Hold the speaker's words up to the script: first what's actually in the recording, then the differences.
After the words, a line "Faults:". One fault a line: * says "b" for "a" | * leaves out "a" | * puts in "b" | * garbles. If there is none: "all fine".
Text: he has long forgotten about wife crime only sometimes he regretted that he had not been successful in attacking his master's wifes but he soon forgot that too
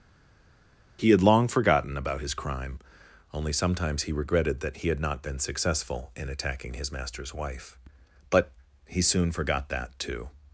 he had long forgotten about his crime only sometimes he regretted that he had not been successful in attacking his master's wife but he soon forgot that too
Faults:
* says "had" for "has"
* says "his" for "wife"
* says "wife" for "wifes"